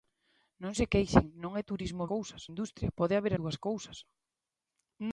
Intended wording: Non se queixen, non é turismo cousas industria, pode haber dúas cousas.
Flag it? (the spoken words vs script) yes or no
no